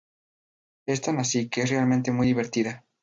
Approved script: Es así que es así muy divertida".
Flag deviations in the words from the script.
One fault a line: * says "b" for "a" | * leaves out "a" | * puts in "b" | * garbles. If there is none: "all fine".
* puts in "tan"
* says "realmente" for "así"